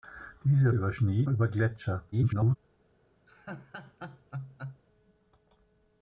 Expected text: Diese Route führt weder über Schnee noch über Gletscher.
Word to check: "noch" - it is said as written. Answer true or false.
false